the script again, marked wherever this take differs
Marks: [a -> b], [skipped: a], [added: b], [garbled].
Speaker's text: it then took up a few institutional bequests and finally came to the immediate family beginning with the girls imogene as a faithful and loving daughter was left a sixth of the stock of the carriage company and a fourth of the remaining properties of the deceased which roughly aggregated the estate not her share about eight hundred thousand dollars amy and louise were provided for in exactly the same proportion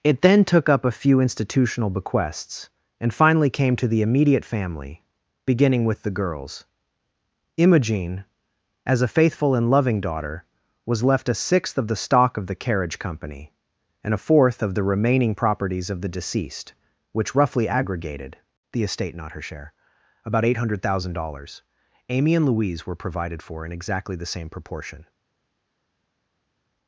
it then took up a few institutional bequests and finally came to the immediate family beginning with the girls imogene as a faithful and loving daughter was left a sixth of the stock of the carriage company and a fourth of the remaining properties of the deceased which roughly aggregated the estate not her share about eight hundred thousand dollars amy and louise were provided for in exactly the same proportion